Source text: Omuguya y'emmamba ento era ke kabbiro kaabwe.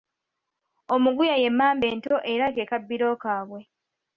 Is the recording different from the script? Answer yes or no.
no